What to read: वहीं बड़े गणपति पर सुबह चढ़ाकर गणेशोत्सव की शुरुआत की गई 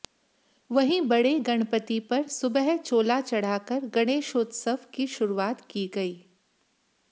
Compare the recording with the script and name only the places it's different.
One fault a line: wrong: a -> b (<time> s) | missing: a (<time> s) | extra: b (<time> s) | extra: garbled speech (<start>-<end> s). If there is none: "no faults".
extra: चोला (2.8 s)